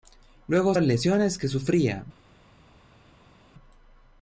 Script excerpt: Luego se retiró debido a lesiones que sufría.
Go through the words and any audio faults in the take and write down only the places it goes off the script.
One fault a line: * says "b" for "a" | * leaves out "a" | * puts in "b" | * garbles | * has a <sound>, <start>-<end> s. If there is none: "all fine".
* leaves out "se retiró debido"